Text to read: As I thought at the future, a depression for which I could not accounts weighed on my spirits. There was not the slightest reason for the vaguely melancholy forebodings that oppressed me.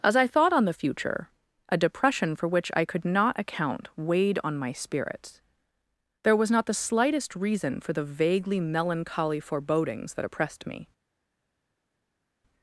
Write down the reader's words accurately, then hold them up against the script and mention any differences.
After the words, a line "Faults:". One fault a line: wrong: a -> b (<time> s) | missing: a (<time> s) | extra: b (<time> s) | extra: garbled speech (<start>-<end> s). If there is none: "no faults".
As I thought on the future, a depression for which I could not account weighed on my spirits. There was not the slightest reason for the vaguely melancholy forebodings that oppressed me.
Faults:
wrong: at -> on (0.5 s)
wrong: accounts -> account (3.4 s)